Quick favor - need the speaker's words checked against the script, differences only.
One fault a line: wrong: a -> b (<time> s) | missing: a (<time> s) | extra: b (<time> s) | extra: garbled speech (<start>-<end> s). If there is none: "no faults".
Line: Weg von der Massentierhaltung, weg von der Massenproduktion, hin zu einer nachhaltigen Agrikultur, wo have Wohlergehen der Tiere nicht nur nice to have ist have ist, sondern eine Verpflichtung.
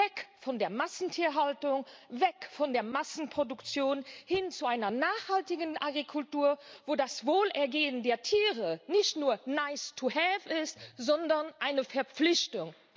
wrong: have -> das (6.9 s)
missing: have ist (10.8 s)